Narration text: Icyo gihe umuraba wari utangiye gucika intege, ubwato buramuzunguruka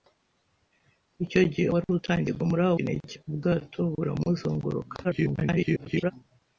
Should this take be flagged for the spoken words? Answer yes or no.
yes